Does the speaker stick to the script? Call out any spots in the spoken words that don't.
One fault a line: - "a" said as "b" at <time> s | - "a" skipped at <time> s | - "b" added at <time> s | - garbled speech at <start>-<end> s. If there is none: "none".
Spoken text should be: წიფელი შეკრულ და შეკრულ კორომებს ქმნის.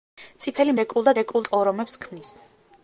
none